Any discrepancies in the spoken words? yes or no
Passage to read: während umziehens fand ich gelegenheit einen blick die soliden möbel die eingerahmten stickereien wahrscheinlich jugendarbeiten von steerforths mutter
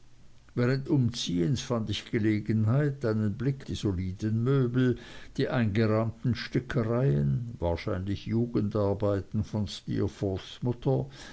no